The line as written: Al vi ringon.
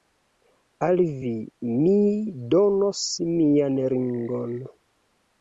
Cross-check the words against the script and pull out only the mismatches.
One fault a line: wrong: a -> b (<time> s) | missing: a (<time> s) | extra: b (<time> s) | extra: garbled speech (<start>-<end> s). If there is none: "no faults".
extra: mi donos mian (1.8 s)